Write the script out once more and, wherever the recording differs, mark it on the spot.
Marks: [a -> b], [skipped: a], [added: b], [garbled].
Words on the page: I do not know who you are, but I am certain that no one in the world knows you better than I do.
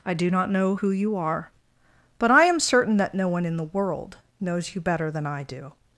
I do not know who you are, but I am certain that no one in the world knows you better than I do.